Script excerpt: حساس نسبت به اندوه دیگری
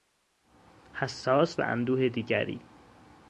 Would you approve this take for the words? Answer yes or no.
no